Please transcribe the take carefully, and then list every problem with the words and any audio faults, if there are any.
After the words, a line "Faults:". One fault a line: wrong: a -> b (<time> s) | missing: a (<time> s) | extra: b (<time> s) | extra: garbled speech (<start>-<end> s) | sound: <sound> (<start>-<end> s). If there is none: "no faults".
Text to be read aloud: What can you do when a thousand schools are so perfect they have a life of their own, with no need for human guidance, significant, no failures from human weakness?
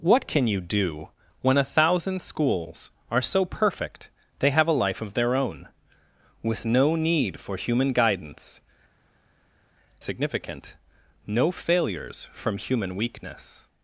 What can you do when a thousand schools are so perfect they have a life of their own, with no need for human guidance, significant, no failures from human weakness?
Faults:
no faults